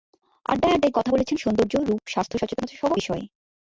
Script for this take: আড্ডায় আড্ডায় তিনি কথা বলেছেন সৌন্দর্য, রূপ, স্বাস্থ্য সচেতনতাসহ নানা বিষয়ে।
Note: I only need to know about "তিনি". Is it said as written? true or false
false